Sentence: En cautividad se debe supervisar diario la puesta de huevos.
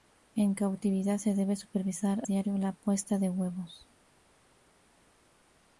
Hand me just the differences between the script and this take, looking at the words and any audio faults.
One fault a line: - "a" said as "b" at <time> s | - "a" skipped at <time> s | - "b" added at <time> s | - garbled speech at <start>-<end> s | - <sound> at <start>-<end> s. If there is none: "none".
none